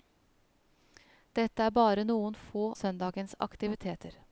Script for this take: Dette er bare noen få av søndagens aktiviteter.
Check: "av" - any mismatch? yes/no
yes